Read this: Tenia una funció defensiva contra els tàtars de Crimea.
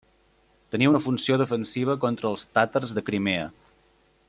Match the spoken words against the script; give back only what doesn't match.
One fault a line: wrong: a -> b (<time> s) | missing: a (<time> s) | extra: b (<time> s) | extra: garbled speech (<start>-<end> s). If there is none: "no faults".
no faults